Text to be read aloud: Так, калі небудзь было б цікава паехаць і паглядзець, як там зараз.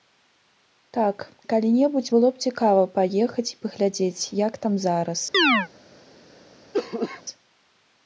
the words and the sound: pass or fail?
fail